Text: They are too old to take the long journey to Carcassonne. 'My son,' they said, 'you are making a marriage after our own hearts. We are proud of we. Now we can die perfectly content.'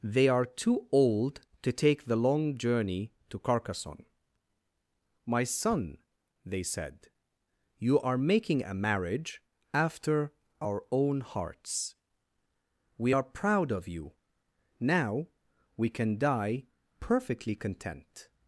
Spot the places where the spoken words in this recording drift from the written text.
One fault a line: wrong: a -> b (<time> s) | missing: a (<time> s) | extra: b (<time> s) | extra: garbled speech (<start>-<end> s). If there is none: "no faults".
wrong: we -> you (13.9 s)